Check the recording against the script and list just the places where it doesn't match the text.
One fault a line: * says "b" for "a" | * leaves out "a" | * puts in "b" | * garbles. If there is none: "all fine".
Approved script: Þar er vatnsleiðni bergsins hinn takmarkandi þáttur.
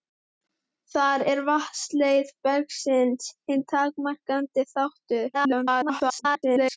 * garbles